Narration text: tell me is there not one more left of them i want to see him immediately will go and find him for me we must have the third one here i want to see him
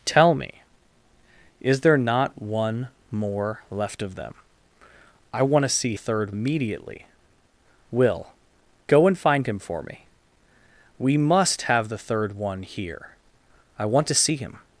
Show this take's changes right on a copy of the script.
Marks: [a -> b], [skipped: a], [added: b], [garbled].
tell me is there not one more left of them i want to see [him -> third] immediately will go and find him for me we must have the third one here i want to see him